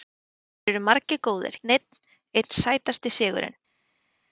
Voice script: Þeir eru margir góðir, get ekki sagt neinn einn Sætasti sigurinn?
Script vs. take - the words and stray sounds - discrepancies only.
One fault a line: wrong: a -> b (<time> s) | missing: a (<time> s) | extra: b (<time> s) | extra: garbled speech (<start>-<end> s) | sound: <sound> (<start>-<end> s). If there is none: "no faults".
missing: get ekki sagt (1.6 s)